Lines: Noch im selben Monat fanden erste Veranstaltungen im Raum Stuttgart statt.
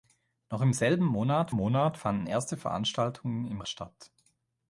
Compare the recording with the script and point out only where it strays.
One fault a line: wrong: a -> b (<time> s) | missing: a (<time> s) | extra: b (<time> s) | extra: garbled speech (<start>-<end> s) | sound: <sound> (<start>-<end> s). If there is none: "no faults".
extra: Monat (1.5 s)
missing: Raum Stuttgart (3.6 s)